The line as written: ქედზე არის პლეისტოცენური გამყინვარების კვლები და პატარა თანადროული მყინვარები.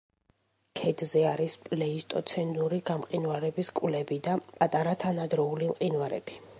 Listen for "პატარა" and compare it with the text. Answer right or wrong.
right